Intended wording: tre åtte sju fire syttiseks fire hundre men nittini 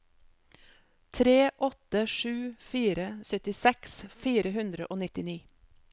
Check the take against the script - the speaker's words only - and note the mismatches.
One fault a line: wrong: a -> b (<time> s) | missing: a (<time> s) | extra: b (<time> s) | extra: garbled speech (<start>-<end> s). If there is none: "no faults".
wrong: men -> og (4.9 s)